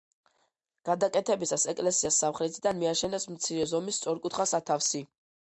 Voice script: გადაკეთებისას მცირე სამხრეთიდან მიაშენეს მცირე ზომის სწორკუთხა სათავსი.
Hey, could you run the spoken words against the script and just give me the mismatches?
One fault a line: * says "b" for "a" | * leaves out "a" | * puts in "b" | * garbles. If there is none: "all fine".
* says "ეკლესიას" for "მცირე"